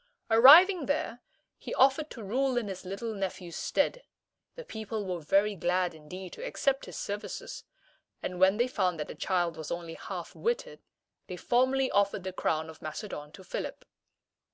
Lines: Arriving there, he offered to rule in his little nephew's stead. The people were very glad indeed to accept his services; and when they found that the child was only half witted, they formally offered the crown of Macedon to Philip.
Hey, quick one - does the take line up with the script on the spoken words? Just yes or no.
yes